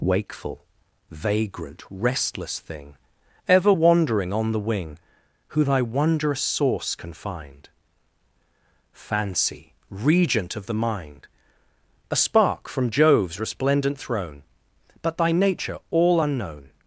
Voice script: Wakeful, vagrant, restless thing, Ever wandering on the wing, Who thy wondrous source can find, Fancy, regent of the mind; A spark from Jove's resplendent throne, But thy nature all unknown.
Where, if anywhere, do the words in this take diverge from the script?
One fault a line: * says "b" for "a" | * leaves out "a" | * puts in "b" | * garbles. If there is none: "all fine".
all fine